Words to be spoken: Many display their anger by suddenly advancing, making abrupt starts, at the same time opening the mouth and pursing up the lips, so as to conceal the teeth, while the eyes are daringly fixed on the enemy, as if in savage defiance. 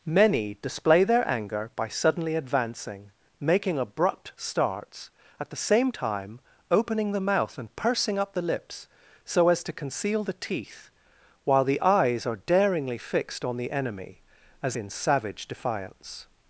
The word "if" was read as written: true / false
false